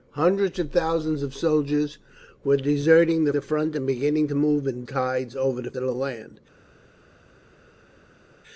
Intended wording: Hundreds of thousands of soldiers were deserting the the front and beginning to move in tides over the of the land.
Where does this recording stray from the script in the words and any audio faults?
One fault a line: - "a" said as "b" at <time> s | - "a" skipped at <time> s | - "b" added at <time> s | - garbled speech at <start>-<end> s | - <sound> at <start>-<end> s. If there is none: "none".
none